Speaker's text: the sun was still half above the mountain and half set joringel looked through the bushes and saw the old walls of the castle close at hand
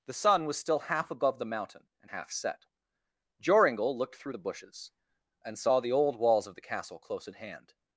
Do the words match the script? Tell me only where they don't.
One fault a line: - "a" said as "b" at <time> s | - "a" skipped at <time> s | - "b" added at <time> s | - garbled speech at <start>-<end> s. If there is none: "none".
none